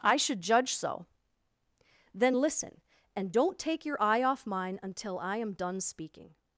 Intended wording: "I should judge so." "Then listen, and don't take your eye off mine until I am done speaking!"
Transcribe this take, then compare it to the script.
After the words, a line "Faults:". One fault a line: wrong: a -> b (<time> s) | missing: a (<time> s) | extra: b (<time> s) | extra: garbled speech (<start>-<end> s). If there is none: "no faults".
"I should judge so." "Then listen, and don't take your eye off mine until I am done speaking!"
Faults:
no faults